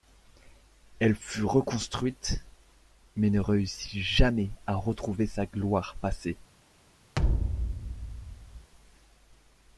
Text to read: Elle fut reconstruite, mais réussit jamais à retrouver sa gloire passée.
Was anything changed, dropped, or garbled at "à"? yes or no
no